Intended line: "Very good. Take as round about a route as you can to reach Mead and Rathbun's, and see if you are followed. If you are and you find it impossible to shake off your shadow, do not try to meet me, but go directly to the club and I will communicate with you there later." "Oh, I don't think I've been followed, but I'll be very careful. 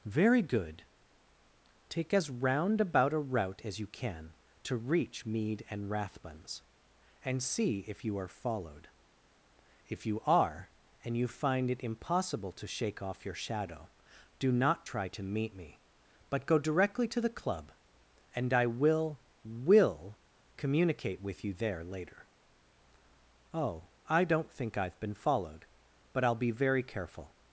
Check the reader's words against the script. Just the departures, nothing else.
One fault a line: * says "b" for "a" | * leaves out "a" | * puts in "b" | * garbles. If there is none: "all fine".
* puts in "will"